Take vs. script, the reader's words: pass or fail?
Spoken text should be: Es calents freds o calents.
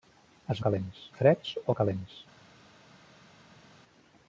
pass